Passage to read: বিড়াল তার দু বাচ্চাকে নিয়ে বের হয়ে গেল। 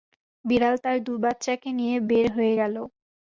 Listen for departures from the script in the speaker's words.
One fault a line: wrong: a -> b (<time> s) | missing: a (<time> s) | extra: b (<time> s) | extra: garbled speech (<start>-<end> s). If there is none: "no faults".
no faults